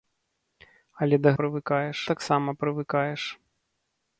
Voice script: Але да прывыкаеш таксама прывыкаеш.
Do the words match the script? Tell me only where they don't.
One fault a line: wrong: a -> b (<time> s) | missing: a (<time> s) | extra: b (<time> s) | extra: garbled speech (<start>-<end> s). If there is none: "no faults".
no faults